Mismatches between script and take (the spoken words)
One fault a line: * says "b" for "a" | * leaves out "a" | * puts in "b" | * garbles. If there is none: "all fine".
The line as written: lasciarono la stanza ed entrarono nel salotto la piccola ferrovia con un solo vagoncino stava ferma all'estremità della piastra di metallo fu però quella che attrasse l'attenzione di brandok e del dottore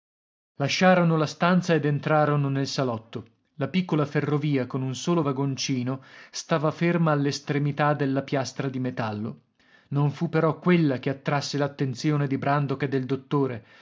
* puts in "non"